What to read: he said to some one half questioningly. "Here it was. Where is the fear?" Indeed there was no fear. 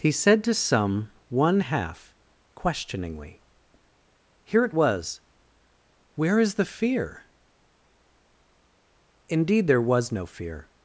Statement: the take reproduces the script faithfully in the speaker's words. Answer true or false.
true